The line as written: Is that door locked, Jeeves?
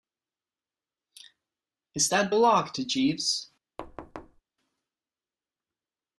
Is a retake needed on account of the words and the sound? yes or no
yes